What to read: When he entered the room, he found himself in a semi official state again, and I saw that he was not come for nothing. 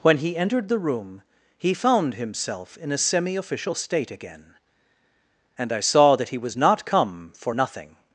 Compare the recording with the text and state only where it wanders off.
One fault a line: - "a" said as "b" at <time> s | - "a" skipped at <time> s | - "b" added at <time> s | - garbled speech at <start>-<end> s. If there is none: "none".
none